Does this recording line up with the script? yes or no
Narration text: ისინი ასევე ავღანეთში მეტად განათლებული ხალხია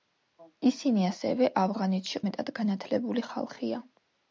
yes